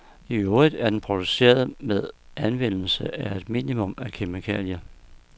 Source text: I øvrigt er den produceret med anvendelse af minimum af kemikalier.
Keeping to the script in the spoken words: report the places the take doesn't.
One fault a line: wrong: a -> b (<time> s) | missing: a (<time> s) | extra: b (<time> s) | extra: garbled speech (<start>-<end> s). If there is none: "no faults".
extra: et (3.4 s)